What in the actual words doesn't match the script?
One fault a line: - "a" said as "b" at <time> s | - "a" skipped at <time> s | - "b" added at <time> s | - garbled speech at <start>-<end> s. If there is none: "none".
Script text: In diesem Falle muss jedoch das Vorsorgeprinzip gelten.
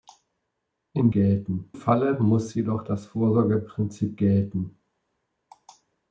- "diesem" said as "gelten" at 1.1 s